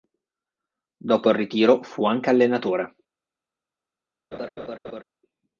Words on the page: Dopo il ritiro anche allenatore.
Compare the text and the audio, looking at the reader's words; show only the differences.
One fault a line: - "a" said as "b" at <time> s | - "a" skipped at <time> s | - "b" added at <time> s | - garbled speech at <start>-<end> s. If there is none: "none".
- "fu" added at 1.8 s